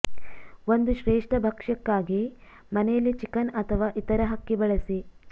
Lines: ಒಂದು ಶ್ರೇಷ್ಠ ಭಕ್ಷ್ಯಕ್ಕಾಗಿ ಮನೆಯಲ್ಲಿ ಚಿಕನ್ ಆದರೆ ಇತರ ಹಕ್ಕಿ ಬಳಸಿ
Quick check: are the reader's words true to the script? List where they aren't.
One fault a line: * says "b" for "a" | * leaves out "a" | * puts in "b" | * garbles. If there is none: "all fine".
* says "ಅಥವಾ" for "ಆದರೆ"